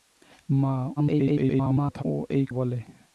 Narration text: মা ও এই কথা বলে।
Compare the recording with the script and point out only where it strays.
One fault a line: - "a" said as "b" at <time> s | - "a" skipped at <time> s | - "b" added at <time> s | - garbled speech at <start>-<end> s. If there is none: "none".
- garbled speech at 1.0-2.0 s
- "কথা" skipped at 2.4 s